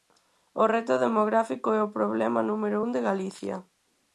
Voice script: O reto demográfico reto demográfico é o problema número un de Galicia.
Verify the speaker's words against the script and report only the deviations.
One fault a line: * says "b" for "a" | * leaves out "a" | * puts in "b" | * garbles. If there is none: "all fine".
* leaves out "reto demográfico"